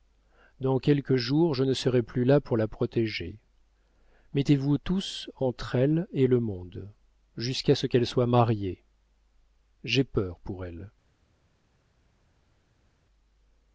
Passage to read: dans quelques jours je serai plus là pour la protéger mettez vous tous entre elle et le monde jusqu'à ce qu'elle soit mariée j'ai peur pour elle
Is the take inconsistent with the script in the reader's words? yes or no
yes